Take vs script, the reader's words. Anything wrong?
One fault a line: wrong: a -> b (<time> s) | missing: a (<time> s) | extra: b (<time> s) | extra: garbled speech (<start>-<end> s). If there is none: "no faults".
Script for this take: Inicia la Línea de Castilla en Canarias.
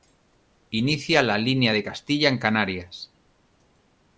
no faults